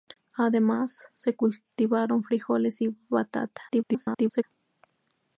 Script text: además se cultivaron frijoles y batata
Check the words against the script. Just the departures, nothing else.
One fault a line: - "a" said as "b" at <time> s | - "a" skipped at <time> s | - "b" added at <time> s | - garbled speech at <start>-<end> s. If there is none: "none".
- garbled speech at 3.7-4.4 s